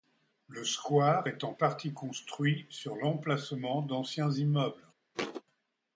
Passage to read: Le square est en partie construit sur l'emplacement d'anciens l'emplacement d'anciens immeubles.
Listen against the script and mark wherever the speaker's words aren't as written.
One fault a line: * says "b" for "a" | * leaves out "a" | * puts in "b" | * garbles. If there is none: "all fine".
* leaves out "l'emplacement d'anciens"